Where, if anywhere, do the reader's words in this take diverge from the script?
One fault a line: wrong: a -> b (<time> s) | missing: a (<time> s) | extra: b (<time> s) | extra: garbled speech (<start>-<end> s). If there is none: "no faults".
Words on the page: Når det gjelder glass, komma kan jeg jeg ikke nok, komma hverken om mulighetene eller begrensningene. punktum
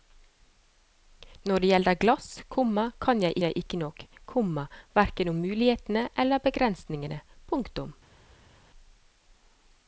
no faults